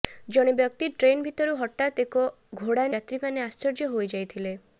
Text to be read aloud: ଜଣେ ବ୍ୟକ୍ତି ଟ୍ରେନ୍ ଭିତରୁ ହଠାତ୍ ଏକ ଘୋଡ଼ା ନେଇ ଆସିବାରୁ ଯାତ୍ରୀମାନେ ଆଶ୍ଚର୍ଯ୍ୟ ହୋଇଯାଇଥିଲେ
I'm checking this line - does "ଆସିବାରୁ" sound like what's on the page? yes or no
no